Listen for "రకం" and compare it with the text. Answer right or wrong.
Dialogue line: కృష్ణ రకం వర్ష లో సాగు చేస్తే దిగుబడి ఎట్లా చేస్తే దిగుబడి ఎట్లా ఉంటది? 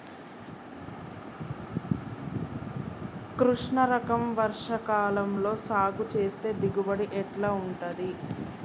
right